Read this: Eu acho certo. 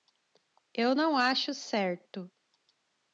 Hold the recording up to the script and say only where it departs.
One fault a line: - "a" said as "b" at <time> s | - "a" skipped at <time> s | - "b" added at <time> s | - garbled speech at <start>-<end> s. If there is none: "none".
- "não" added at 0.9 s